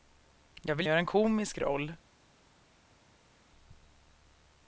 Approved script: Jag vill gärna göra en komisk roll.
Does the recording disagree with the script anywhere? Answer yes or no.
yes